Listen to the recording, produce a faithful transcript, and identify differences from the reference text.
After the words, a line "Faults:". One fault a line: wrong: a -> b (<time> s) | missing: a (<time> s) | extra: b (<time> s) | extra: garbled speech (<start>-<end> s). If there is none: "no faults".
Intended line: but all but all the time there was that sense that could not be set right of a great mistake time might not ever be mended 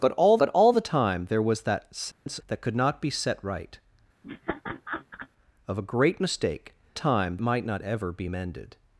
but all but all the time there was that sense that could not be set right of a great mistake time might not ever be mended
Faults:
no faults